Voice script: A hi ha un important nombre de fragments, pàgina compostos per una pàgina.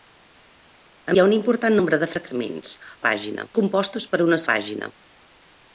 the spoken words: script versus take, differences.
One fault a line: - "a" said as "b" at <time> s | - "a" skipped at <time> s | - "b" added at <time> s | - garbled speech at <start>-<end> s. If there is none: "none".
none